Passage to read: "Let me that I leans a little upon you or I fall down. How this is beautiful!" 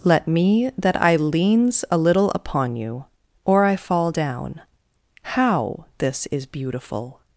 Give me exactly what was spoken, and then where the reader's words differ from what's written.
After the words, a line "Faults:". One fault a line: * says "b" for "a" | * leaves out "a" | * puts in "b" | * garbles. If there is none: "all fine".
"Let me that I leans a little upon you or I fall down. How this is beautiful!"
Faults:
all fine